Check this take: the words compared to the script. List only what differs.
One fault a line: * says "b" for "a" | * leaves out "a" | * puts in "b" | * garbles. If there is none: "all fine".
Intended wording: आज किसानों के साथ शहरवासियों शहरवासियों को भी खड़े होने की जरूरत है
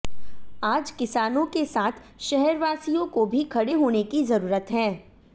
* leaves out "शहरवासियों"